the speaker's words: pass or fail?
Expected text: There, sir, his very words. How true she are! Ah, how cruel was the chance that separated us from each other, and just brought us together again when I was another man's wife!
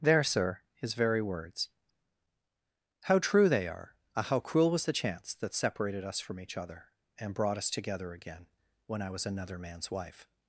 fail